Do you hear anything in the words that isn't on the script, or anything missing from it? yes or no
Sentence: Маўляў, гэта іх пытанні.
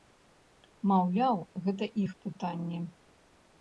no